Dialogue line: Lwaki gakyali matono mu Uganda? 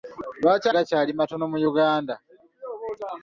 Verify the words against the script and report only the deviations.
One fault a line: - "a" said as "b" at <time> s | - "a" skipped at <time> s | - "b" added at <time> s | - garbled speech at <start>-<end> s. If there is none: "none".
none